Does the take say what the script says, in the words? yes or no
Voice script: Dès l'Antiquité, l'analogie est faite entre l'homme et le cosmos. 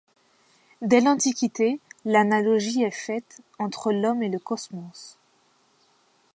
yes